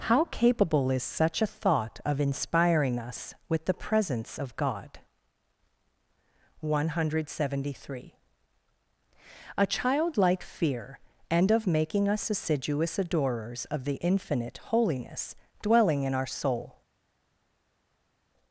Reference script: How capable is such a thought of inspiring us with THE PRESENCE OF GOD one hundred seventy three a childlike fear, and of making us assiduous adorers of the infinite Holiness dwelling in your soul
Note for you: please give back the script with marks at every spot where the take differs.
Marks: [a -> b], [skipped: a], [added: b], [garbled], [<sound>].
How capable is such a thought of inspiring us with THE PRESENCE OF GOD one hundred seventy three a childlike fear, and of making us assiduous adorers of the infinite Holiness dwelling in [your -> our] soul